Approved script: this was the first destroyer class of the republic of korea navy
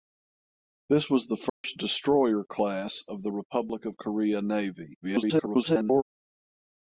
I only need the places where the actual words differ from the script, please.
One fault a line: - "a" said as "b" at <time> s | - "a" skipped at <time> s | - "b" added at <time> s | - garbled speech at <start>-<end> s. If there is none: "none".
- garbled speech at 5.0-6.0 s